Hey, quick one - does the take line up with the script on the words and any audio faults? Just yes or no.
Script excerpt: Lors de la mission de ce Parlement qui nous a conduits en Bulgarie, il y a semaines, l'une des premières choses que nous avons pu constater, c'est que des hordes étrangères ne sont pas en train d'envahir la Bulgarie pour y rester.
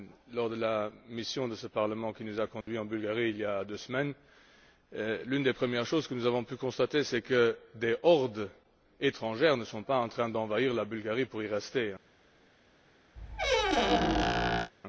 no